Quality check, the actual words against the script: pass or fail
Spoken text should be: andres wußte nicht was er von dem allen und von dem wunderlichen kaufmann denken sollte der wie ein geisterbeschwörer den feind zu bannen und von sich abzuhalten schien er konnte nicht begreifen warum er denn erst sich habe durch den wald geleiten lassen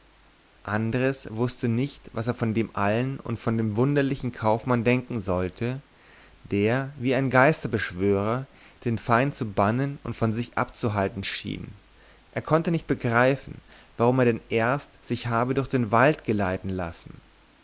pass